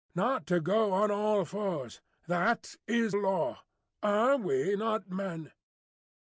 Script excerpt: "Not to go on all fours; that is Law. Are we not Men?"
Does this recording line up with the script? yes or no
yes